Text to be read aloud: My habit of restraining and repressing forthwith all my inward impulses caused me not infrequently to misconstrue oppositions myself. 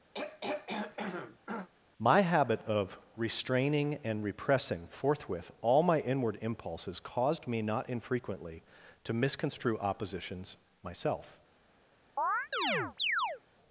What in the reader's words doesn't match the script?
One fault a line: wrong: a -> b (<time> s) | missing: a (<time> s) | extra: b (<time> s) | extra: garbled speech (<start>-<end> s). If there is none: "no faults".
no faults